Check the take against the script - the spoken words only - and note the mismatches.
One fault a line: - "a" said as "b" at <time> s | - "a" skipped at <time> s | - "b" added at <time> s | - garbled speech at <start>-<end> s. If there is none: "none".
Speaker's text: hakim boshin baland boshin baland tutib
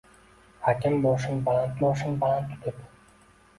none